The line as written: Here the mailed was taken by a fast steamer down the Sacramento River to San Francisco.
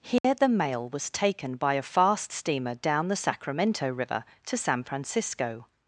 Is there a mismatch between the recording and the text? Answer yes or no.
yes